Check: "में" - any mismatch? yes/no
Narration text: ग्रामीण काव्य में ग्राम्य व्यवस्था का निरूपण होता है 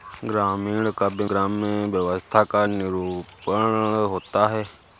yes